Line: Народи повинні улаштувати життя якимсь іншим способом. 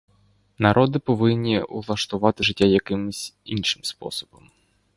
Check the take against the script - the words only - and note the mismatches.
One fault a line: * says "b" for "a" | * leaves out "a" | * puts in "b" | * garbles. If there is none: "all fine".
all fine